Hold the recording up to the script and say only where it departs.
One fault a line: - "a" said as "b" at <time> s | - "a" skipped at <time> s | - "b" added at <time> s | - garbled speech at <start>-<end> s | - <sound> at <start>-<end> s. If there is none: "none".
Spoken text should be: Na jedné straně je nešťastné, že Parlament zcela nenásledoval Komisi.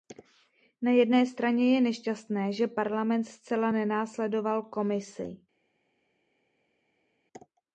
none